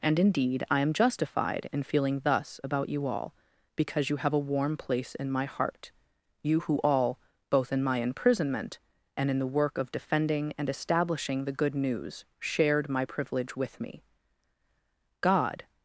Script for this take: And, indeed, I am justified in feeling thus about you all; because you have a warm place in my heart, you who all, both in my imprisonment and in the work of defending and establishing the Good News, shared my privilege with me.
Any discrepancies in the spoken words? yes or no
yes